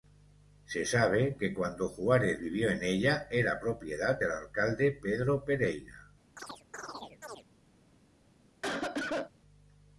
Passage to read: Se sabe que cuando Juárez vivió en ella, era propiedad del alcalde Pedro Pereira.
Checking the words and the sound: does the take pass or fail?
fail